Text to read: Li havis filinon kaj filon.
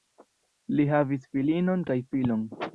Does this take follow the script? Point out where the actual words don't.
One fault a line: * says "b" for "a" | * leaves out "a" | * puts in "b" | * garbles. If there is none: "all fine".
all fine